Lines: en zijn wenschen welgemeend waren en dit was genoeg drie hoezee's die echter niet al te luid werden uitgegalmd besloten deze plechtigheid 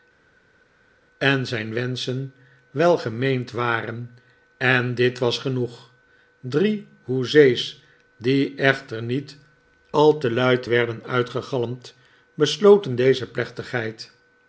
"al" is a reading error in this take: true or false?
false